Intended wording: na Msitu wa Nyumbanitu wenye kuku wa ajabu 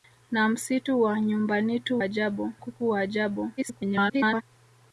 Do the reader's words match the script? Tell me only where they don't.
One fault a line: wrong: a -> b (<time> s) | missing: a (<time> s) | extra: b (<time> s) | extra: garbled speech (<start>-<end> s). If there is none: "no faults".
wrong: wenye -> ajabu (2.0 s)
extra: garbled speech (3.6-4.4 s)